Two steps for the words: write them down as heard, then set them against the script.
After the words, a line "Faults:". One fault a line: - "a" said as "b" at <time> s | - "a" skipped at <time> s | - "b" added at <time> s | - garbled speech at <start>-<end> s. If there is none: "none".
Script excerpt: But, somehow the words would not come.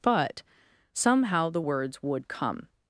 But, somehow the words would come.
Faults:
- "not" skipped at 2.3 s